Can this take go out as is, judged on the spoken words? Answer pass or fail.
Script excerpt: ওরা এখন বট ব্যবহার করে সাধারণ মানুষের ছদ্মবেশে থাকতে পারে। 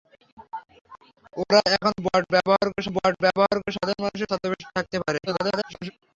fail